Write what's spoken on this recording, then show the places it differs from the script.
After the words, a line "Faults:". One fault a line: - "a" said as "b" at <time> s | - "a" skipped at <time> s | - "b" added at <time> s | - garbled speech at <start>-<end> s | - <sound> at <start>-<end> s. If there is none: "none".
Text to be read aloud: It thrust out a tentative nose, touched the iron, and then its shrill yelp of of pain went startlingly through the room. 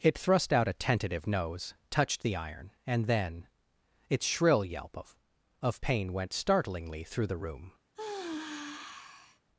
It thrust out a tentative nose, touched the iron, and then its shrill yelp of of pain went startlingly through the room.
Faults:
- sigh at 7.9-9.4 s